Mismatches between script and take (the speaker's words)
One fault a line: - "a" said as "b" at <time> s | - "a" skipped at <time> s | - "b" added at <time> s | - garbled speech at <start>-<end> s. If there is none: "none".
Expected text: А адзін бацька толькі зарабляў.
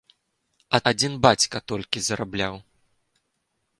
none